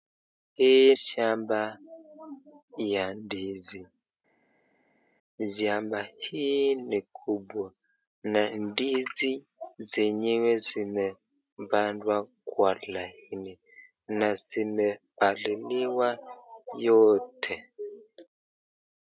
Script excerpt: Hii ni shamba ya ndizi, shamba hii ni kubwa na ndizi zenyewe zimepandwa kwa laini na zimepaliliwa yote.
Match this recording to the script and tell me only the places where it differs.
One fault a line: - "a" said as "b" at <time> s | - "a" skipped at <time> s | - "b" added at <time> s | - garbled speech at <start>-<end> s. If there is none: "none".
- "ni" skipped at 0.9 s